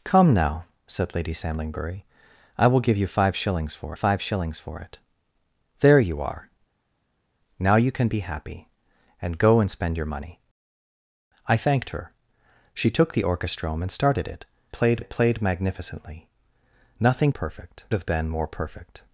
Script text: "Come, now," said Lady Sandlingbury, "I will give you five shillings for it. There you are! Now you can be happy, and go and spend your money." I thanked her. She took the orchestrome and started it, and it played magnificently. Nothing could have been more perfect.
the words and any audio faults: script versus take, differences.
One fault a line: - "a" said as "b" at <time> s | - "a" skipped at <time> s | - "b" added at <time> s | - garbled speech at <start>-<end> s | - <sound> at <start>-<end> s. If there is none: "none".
- "five shillings for" added at 3.9 s
- "and" said as "played" at 14.7 s
- "could" said as "perfect" at 17.3 s